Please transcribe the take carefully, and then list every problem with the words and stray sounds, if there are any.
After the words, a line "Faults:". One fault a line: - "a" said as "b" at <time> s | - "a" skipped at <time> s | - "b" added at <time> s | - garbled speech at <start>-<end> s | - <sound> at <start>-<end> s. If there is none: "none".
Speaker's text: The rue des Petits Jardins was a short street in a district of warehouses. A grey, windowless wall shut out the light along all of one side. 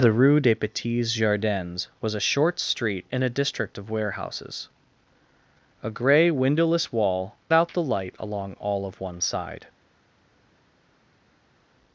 The rue des Petits Jardins was a short street in a district of warehouses. A grey, windowless wall out the light along all of one side.
Faults:
- "shut" skipped at 7.3 s